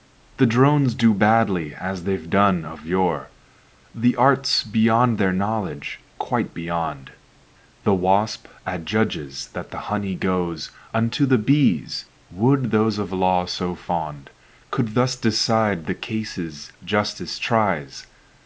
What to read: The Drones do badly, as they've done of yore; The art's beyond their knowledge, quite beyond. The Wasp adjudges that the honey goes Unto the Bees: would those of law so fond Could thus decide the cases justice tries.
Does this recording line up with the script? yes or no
yes